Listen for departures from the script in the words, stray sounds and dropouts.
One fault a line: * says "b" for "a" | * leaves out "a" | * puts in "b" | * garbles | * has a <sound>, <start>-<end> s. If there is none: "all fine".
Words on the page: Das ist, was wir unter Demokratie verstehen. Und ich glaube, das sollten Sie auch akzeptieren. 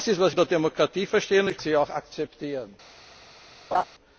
* leaves out "wir"
* leaves out "glaube das sollten"
* has a laugh, 3.7-3.8 s